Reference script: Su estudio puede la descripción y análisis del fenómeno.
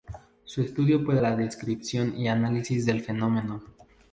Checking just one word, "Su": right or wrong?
right